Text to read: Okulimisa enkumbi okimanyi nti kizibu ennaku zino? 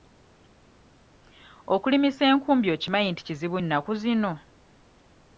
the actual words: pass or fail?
pass